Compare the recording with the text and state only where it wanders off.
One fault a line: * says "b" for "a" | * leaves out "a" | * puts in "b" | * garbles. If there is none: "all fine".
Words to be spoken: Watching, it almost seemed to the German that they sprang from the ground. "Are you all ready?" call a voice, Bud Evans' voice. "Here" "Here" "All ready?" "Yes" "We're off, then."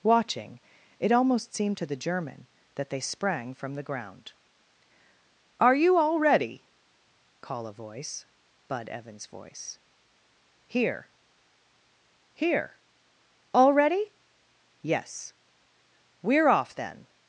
all fine